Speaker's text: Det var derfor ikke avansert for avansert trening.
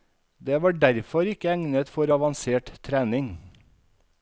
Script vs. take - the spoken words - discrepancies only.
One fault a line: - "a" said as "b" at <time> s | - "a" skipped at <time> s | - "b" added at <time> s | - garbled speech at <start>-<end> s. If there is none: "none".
- "avansert" said as "egnet" at 1.5 s